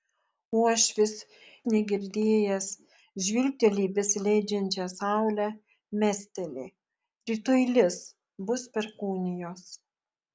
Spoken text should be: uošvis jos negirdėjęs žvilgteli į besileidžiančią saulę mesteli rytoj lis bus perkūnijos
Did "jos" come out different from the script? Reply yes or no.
yes